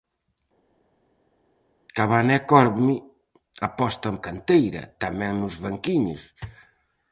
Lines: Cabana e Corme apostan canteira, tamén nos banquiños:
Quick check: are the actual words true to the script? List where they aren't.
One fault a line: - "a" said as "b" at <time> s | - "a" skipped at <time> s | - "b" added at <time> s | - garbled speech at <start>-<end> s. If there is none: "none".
none